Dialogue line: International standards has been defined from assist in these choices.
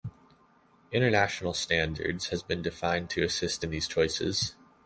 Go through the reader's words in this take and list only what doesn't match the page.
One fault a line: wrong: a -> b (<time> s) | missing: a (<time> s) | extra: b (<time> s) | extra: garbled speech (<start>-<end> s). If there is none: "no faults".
wrong: from -> to (3.1 s)